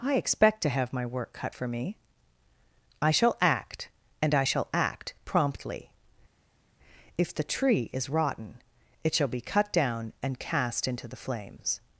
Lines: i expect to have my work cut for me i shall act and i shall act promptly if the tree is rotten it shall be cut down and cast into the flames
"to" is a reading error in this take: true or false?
false